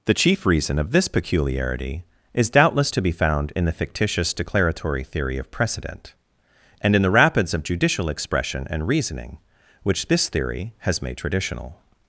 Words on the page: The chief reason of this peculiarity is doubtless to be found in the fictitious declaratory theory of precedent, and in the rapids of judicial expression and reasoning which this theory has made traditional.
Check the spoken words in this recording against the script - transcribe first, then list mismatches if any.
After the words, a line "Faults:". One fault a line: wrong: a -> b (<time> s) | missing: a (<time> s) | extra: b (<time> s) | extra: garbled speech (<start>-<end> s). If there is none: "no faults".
The chief reason of this peculiarity is doubtless to be found in the fictitious declaratory theory of precedent, and in the rapids of judicial expression and reasoning which this theory has made traditional.
Faults:
no faults